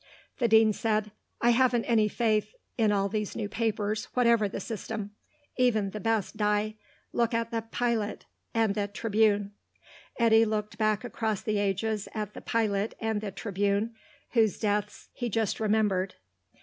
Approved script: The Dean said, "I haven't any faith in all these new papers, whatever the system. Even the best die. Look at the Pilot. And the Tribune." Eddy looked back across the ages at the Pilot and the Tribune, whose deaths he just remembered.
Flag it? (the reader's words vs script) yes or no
no